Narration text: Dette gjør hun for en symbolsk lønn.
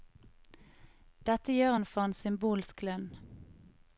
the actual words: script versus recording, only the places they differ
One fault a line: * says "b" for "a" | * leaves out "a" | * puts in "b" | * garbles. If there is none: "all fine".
all fine